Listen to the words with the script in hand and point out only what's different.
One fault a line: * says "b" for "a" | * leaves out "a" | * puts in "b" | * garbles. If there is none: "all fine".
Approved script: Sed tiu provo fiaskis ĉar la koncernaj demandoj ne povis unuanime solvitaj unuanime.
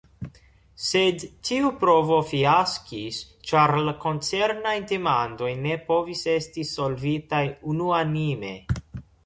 * says "esti" for "unuanime"